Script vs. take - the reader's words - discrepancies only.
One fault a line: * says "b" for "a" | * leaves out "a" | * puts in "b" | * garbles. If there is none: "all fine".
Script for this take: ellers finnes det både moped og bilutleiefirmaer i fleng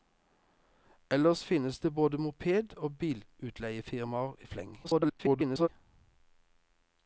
* garbles